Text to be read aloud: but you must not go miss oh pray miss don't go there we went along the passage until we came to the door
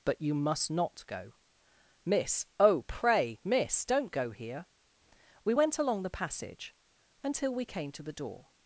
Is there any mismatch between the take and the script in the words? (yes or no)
yes